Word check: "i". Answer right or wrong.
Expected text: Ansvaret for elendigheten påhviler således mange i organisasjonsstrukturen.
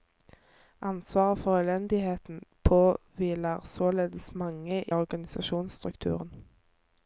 wrong